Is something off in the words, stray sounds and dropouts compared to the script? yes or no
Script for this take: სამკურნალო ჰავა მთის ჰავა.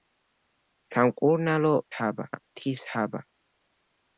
no